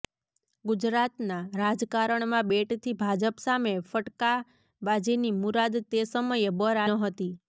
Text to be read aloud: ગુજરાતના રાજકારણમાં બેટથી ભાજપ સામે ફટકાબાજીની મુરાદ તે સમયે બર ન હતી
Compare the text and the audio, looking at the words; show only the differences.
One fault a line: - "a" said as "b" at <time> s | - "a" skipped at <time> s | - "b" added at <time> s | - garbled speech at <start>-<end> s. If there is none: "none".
none